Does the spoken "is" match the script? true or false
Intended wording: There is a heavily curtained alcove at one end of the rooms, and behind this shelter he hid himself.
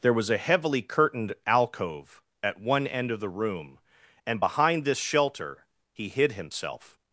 false